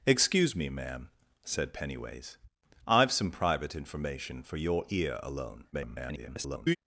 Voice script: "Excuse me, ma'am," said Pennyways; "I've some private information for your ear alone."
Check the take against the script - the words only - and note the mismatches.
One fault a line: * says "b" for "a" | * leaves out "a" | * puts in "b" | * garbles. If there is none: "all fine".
* garbles